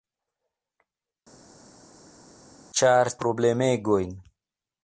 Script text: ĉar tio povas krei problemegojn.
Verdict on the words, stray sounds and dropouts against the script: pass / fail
fail